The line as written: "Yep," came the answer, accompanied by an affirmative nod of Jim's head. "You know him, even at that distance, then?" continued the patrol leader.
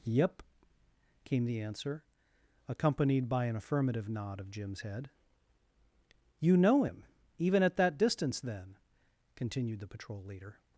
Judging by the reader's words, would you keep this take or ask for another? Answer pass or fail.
pass